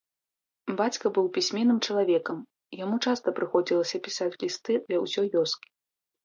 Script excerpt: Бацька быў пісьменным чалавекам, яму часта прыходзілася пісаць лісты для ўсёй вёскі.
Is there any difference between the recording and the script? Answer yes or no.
no